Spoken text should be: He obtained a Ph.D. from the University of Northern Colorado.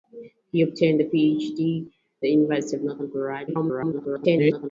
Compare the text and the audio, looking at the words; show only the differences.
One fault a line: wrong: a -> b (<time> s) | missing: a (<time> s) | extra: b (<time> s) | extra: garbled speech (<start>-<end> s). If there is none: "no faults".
missing: from (1.9 s)
extra: garbled speech (3.5-4.7 s)